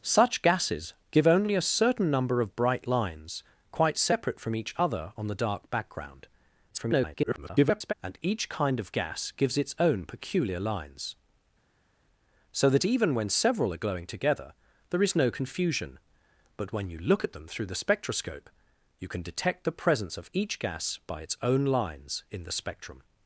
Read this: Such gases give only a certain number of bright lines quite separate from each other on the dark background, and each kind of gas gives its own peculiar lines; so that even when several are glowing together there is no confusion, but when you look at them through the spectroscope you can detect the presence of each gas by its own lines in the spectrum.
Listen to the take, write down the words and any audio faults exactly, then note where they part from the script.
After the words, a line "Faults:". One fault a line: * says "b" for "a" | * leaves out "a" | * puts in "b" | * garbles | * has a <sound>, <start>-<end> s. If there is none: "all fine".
Such gases give only a certain number of bright lines quite separate from each other on the dark background, [garbled] and each kind of gas gives its own peculiar lines; so that even when several are glowing together there is no confusion, but when you look at them through the spectroscope you can detect the presence of each gas by its own lines in the spectrum.
Faults:
* garbles